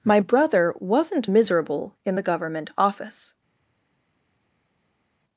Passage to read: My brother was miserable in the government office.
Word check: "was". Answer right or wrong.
wrong